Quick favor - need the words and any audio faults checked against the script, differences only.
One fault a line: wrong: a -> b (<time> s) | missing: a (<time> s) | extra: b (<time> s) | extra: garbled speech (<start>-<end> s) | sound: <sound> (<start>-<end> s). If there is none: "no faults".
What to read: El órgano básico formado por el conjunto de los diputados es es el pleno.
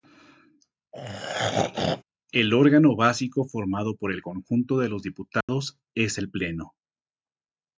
sound: throat clearing (0.9-2.0 s)
sound: dropout (5.4-5.5 s)
missing: es (6.2 s)